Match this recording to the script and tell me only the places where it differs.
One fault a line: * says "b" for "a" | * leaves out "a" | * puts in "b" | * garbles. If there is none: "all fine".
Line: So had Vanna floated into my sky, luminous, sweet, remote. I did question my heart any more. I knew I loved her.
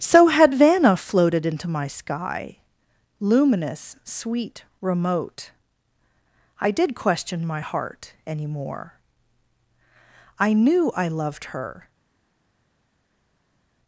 all fine